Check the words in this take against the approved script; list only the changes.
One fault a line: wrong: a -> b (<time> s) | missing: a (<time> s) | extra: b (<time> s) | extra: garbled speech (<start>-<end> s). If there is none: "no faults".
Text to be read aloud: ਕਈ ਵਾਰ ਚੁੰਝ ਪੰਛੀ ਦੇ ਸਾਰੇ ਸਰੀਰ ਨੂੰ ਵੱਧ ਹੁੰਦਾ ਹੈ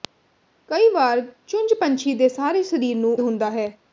missing: ਵੱਧ (3.2 s)